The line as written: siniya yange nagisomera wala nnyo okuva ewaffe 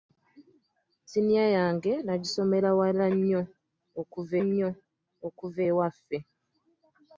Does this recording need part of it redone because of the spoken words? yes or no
yes